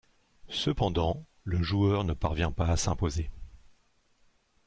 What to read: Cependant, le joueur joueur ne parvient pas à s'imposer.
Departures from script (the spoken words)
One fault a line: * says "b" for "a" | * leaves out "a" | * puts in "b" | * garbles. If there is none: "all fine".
* leaves out "joueur"